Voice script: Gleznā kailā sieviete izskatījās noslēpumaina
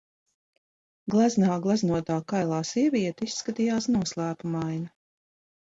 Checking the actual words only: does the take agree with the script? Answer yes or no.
no